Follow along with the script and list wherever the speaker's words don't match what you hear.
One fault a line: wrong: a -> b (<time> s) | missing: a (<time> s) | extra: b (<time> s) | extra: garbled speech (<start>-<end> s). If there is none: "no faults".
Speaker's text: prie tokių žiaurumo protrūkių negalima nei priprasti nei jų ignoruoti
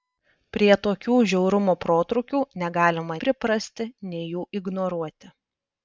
missing: nei (3.2 s)